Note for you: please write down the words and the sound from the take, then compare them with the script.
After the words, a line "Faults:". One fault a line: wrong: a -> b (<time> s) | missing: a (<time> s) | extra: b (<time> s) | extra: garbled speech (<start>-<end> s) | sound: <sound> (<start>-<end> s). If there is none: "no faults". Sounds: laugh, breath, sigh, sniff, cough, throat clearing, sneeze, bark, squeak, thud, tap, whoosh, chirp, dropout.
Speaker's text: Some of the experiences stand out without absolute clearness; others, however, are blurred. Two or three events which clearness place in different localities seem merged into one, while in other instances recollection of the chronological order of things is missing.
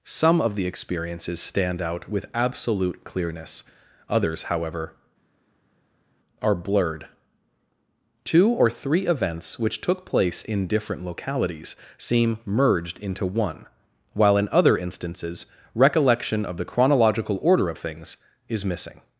Some of the experiences stand out with absolute clearness; others, however, are blurred. Two or three events which took place in different localities seem merged into one, while in other instances recollection of the chronological order of things is missing.
Faults:
wrong: without -> with (2.1 s)
wrong: clearness -> took (9.8 s)